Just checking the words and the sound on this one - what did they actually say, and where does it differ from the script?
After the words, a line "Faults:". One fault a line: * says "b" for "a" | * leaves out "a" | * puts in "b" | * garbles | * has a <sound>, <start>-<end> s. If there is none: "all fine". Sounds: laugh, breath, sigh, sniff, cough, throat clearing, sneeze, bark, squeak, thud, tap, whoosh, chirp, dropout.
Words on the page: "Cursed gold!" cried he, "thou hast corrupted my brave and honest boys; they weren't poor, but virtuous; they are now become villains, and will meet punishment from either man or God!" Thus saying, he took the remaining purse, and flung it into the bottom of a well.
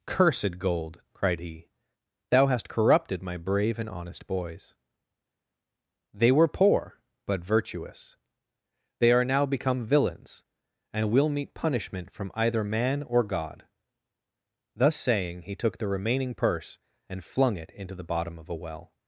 "Cursed gold!" cried he, "thou hast corrupted my brave and honest boys; they were poor, but virtuous; they are now become villains, and will meet punishment from either man or God!" Thus saying, he took the remaining purse, and flung it into the bottom of a well.
Faults:
* says "were" for "weren't"